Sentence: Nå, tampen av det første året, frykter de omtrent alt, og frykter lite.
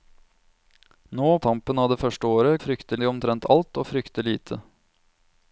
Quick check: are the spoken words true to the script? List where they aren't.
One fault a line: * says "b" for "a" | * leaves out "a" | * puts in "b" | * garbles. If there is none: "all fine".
all fine